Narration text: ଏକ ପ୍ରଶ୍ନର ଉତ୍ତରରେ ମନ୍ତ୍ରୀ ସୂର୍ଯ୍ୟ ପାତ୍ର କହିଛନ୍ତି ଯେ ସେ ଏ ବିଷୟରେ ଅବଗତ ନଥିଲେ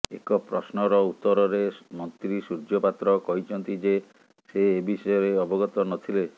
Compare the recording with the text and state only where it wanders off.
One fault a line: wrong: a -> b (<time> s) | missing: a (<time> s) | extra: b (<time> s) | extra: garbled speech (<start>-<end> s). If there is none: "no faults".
no faults